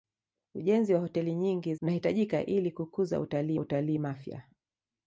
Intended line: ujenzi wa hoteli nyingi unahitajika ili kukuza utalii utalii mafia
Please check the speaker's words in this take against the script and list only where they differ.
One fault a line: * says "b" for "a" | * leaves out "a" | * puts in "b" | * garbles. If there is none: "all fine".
all fine